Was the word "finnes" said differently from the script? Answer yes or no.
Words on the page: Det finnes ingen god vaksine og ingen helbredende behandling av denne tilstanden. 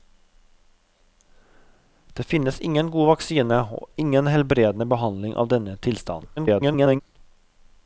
no